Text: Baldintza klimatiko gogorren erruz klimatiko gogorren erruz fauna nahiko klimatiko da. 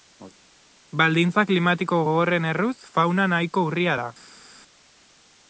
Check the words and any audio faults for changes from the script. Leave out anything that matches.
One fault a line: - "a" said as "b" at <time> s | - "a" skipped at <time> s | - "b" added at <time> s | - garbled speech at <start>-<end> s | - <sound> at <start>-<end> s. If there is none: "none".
- "klimatiko gogorren erruz" skipped at 2.8 s
- "klimatiko" said as "urria" at 3.7 s